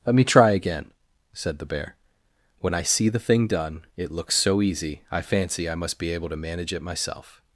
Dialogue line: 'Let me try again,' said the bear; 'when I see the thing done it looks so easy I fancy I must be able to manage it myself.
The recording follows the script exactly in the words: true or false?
true